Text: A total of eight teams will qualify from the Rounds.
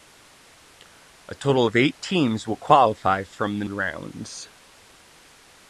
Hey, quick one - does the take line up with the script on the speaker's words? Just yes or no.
yes